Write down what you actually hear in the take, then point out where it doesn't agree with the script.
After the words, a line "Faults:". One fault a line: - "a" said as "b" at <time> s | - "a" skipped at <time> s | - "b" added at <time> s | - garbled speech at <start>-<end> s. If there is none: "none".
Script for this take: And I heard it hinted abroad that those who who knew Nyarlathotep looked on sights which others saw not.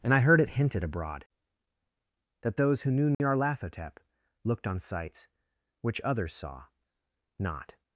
And I heard it hinted abroad that those who knew Nyarlathotep looked on sights which others saw not.
Faults:
- "who" skipped at 2.9 s